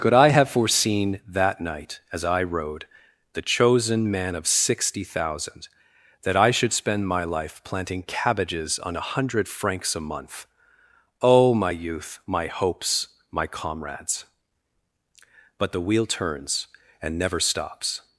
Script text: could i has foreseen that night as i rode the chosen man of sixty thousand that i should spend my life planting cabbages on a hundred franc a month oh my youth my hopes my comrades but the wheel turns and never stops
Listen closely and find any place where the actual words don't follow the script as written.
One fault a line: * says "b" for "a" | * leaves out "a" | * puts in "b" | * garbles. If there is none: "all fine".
* says "have" for "has"
* says "francs" for "franc"